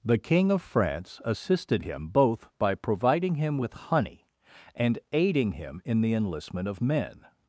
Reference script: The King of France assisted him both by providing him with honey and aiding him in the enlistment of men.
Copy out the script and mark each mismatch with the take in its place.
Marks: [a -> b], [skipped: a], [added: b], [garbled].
The King of France assisted him both by providing him with honey and aiding him in the enlistment of men.